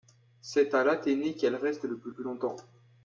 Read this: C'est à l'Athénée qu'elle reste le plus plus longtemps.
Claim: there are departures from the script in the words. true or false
false